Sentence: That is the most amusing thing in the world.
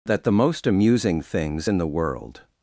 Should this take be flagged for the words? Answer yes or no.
yes